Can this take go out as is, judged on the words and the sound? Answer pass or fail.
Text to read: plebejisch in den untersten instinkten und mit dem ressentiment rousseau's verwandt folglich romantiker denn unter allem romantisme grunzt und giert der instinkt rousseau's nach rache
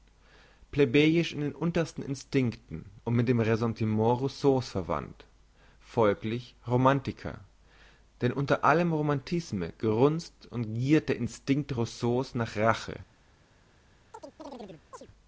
fail